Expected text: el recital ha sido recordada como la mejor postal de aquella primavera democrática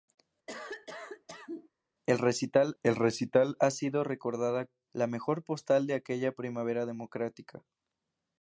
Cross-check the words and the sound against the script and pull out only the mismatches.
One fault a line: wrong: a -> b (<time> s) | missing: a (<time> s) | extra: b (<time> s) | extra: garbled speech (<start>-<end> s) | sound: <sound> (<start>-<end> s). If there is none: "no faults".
sound: cough (0.5-1.7 s)
extra: el recital (2.8 s)
missing: como (4.7 s)